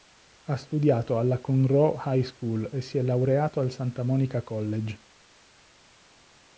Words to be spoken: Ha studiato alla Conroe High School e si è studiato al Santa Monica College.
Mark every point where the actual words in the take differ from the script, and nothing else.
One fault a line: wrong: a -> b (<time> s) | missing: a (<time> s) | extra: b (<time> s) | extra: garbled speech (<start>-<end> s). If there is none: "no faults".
wrong: studiato -> laureato (3.0 s)